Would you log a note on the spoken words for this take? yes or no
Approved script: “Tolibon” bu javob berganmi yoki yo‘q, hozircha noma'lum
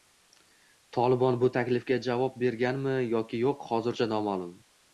yes